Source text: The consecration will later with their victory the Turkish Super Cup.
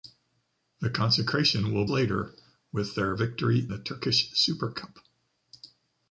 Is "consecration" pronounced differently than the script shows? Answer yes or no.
no